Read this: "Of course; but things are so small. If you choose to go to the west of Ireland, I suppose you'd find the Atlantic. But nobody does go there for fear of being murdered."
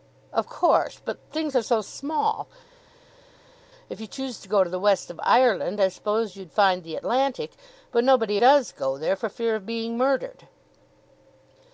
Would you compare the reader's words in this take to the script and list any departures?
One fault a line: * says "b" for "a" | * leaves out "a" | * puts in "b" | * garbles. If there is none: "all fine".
all fine